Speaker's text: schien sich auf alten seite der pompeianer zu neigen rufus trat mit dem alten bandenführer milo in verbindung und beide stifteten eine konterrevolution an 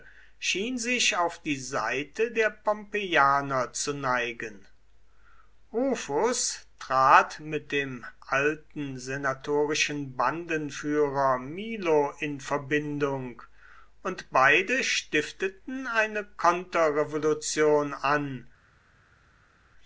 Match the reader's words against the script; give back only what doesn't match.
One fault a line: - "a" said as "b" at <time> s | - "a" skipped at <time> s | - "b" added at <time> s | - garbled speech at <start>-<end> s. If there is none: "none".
- "alten" said as "die" at 1.4 s
- "senatorischen" added at 9.0 s